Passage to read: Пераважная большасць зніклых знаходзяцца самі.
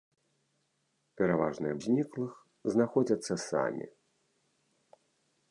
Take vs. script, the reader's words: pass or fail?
fail